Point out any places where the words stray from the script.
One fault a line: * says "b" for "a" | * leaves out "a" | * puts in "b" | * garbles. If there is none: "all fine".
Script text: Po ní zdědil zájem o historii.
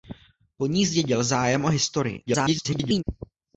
* garbles